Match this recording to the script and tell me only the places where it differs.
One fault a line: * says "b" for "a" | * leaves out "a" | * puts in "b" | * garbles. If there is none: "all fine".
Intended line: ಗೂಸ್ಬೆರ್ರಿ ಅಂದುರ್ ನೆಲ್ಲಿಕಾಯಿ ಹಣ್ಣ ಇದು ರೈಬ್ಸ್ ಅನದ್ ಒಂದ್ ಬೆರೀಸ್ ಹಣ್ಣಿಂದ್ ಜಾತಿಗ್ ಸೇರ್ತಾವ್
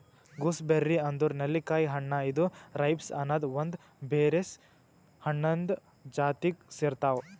all fine